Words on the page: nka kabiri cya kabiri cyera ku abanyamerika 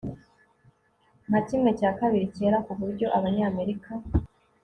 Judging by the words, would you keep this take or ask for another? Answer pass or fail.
fail